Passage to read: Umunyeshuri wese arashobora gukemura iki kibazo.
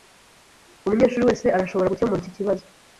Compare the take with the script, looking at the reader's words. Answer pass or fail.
pass